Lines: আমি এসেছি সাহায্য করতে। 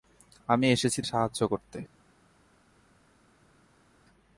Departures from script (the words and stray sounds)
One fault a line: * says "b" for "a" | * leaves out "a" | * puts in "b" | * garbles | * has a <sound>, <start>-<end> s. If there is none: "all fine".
all fine